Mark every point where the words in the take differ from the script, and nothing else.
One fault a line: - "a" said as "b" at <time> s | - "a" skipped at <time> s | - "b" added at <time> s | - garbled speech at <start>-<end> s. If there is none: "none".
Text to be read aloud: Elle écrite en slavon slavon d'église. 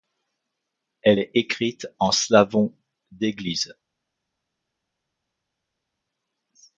- "est" added at 1.2 s
- "slavon" skipped at 2.7 s